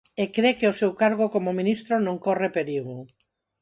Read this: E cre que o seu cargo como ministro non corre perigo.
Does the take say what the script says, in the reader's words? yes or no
yes